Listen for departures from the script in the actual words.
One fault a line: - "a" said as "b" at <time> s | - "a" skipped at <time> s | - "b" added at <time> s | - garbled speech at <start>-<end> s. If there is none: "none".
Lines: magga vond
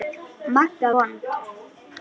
none